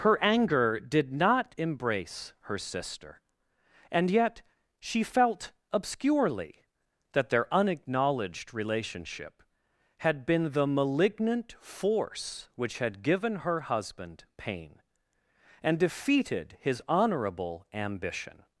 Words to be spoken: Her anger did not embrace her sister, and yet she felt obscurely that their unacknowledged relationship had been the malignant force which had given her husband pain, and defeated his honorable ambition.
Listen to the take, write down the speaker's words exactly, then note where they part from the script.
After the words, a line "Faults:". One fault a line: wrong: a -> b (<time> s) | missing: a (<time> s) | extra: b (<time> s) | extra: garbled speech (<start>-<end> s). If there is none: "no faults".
Her anger did not embrace her sister, and yet she felt obscurely that their unacknowledged relationship had been the malignant force which had given her husband pain, and defeated his honorable ambition.
Faults:
no faults